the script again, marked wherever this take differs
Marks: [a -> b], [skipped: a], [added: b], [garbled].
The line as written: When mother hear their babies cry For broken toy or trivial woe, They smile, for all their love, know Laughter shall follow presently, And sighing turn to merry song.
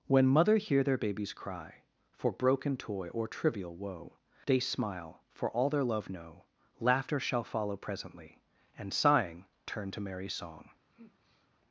When mother hear their babies cry For broken toy or trivial woe, They smile, for all their love, know Laughter shall follow presently, And sighing turn to merry song.